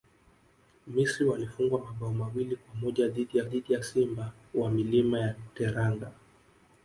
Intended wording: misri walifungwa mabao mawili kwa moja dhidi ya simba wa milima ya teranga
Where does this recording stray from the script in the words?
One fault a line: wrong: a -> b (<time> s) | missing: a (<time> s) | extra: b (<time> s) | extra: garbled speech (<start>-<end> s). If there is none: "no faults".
extra: dhidi ya (3.4 s)